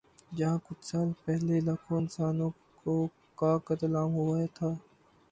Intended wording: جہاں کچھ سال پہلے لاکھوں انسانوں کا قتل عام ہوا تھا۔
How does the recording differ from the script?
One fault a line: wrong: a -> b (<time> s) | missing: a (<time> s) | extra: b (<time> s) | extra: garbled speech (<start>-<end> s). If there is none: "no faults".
no faults